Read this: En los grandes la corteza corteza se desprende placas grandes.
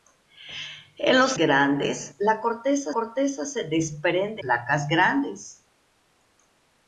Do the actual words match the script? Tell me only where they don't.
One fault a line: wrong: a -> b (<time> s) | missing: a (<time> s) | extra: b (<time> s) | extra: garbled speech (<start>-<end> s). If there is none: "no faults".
no faults